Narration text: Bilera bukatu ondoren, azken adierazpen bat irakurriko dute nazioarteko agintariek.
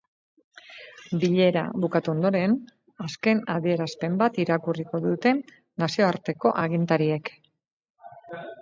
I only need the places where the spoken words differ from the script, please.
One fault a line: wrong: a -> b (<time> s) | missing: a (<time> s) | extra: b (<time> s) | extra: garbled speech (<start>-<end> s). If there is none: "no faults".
no faults